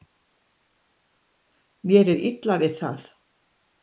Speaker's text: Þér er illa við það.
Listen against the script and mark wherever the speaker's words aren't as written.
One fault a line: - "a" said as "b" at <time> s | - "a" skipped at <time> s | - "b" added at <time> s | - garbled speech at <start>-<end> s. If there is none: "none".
- "Þér" said as "Mér" at 1.9 s